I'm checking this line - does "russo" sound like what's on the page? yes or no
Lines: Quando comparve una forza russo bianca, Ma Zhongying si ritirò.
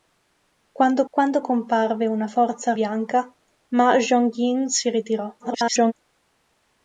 no